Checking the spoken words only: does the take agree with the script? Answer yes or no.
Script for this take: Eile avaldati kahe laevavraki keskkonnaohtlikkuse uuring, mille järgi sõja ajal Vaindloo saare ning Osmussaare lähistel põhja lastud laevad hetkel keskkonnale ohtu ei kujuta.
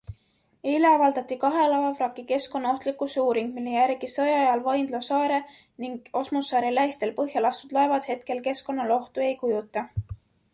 yes